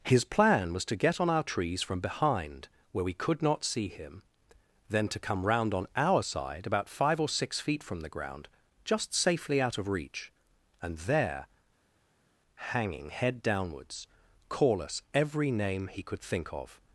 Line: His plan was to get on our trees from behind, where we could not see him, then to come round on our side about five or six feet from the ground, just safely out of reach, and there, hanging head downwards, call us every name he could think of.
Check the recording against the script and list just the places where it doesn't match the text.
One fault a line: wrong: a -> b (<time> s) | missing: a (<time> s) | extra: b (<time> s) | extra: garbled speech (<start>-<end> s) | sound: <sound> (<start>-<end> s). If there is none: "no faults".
no faults